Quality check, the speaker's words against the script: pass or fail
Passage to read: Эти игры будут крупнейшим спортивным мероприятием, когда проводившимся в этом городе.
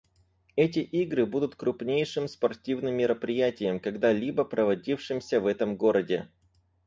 fail